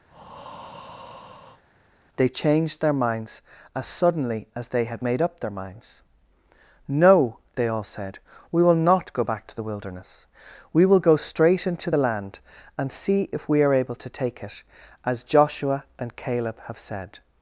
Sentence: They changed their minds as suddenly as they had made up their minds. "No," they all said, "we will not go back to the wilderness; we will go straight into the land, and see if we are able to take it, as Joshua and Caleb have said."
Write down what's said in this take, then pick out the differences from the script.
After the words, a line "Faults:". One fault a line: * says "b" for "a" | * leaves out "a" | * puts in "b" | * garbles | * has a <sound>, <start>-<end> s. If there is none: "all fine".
They changed their minds as suddenly as they had made up their minds. "No," they all said, "we will not go back to the wilderness; we will go straight into the land, and see if we are able to take it, as Joshua and Caleb have said."
Faults:
* has a breath, 0.1-1.6 s